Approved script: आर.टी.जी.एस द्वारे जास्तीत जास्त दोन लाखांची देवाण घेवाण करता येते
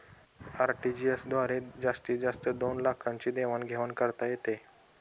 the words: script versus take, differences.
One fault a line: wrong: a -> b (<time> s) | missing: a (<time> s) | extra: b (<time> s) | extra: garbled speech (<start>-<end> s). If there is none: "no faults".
no faults